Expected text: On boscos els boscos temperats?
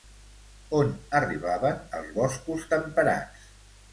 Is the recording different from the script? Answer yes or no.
yes